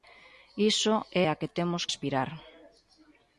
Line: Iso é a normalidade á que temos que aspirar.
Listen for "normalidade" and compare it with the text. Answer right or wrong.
wrong